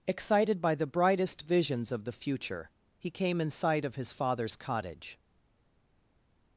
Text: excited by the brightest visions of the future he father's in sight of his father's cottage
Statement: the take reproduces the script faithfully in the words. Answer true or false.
false